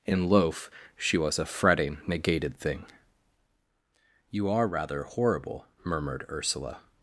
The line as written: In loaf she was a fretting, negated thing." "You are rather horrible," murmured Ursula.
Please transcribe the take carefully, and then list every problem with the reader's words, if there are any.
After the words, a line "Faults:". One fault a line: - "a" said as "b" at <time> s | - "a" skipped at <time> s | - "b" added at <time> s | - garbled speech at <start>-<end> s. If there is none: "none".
In loaf she was a fretting, negated thing." "You are rather horrible," murmured Ursula.
Faults:
none